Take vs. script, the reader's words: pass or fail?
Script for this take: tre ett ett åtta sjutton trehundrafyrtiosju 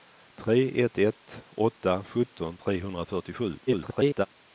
fail